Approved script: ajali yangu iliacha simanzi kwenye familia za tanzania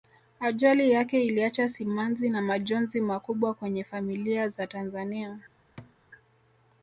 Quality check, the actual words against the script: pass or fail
fail